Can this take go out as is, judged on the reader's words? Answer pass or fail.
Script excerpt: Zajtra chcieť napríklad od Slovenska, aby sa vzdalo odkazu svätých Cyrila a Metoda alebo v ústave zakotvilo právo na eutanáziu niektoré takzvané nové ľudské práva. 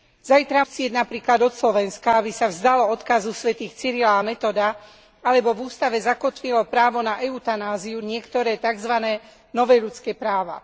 pass